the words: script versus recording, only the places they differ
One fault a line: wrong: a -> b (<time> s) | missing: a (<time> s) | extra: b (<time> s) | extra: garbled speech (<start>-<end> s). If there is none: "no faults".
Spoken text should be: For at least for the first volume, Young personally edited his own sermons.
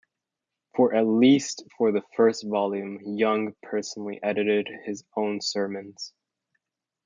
no faults